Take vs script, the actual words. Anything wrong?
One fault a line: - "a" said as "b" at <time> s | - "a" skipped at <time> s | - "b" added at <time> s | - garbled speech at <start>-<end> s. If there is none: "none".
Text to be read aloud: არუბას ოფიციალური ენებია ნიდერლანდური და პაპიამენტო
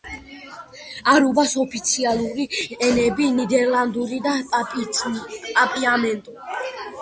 none